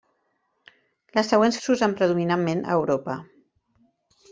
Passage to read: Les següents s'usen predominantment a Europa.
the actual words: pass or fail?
pass